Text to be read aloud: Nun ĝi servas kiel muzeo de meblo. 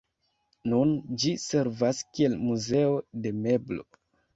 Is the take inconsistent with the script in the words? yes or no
no